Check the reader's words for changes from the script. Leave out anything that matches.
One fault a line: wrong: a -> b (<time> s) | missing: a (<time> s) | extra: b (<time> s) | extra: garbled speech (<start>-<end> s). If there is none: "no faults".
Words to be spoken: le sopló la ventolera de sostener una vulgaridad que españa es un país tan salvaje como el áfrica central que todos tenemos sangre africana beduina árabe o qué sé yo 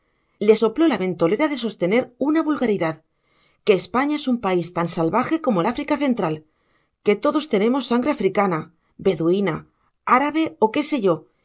no faults